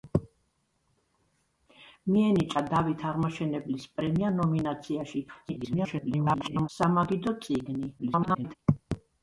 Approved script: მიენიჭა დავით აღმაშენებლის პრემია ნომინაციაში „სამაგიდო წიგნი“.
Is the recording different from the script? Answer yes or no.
yes